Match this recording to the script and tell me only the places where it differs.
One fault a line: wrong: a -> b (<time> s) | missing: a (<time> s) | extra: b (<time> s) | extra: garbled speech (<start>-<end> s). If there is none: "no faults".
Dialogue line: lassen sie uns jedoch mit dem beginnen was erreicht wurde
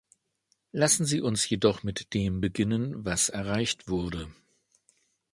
no faults